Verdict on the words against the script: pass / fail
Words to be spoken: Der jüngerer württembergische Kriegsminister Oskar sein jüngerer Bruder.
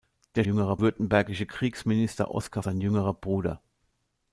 pass